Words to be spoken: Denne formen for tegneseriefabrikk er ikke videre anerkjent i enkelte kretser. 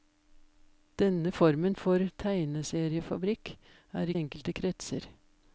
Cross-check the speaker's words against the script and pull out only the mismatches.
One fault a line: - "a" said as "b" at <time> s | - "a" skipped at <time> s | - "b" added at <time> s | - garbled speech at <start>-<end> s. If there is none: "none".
- "ikke videre anerkjent" skipped at 4.1 s